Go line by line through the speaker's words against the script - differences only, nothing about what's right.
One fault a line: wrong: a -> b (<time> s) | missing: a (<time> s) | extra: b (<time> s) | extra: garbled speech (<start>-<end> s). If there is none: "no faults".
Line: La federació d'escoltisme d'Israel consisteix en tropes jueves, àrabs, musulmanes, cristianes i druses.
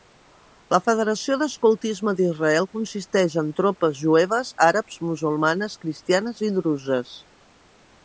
no faults